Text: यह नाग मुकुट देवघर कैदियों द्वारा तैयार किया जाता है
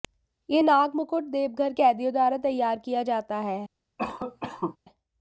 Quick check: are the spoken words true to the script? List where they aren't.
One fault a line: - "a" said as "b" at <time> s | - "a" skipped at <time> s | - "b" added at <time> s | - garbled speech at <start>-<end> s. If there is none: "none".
none